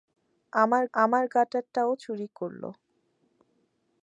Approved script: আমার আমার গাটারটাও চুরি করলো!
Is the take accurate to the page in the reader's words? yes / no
yes